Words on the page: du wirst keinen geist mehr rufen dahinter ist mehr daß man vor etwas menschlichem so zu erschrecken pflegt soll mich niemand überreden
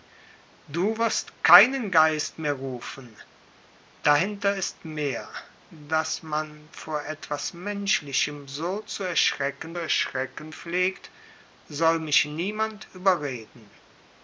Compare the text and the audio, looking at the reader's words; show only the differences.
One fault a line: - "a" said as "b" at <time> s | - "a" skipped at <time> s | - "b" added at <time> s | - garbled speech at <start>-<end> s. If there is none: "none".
- "erschrecken" added at 9.8 s